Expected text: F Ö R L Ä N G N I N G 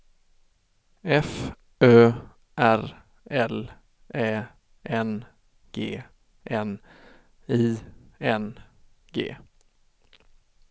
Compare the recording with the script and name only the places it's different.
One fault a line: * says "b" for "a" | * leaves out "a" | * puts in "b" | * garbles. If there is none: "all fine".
all fine